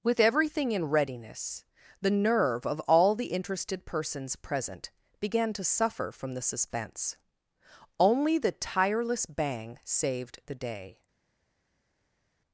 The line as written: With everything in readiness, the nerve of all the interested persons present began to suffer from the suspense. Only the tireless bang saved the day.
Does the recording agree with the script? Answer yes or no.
yes